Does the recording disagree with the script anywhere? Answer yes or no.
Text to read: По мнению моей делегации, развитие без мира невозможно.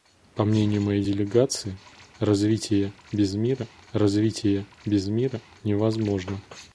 yes